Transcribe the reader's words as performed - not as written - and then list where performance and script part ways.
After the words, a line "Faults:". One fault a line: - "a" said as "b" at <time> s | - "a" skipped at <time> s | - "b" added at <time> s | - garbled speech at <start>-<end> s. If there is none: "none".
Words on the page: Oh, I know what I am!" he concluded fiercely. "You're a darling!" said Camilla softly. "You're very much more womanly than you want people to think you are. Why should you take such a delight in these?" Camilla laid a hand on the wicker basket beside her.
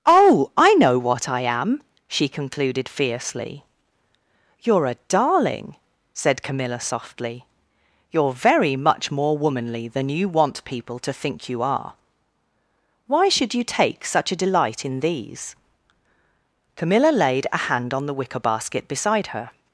Oh, I know what I am!" she concluded fiercely. "You're a darling!" said Camilla softly. "You're very much more womanly than you want people to think you are. Why should you take such a delight in these?" Camilla laid a hand on the wicker basket beside her.
Faults:
- "he" said as "she" at 2.1 s